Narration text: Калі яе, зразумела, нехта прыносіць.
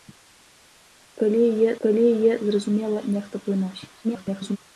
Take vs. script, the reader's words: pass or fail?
fail